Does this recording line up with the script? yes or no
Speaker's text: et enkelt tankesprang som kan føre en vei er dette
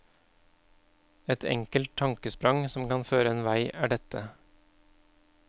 yes